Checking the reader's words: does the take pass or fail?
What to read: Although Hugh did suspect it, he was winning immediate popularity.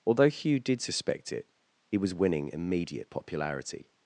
pass